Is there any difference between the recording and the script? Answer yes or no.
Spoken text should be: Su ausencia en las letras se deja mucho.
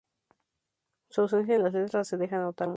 yes